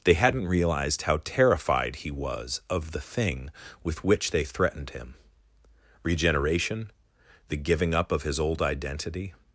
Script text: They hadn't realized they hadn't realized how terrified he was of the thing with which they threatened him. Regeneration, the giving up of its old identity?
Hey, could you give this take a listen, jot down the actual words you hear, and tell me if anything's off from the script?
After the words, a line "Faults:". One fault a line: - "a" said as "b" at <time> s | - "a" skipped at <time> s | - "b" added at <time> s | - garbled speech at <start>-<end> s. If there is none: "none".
They hadn't realized how terrified he was of the thing with which they threatened him. Regeneration, the giving up of his old identity?
Faults:
- "they hadn't realized" skipped at 1.0 s
- "its" said as "his" at 8.2 s